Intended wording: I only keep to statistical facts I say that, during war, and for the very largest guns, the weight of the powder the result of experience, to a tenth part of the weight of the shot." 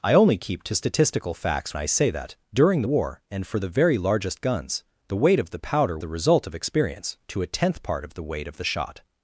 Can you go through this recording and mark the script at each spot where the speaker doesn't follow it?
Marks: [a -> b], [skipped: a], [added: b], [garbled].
I only keep to statistical facts I say that, during war, and for the very largest guns, the weight of the powder the result of experience, to a tenth part of the weight of the shot."